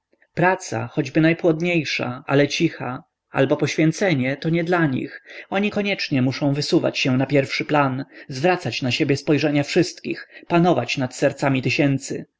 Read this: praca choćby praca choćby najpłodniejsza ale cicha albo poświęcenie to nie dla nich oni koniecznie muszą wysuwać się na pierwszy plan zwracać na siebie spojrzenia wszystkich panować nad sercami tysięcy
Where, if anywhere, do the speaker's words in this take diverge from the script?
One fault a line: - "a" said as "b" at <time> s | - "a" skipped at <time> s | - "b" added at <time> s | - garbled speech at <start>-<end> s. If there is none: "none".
- "praca choćby" skipped at 1.2 s